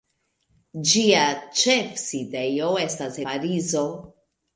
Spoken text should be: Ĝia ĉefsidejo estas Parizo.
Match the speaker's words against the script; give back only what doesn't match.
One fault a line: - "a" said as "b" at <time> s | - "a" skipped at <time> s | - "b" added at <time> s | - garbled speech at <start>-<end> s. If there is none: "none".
none